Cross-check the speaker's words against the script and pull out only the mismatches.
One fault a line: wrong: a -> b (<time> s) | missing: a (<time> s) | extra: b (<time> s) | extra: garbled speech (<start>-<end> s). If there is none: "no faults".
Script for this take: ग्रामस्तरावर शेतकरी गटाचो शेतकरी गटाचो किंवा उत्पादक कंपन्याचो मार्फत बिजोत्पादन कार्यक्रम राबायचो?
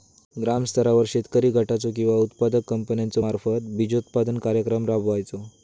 missing: शेतकरी गटाचो (1.9 s)